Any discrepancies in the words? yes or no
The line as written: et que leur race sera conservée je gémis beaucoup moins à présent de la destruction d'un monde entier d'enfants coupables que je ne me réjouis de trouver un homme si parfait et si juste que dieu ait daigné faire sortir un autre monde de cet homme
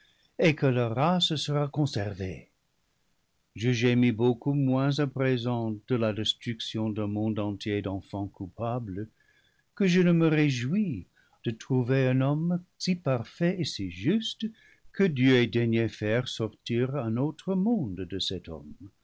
no